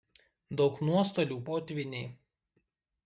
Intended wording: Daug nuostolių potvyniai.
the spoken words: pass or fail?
pass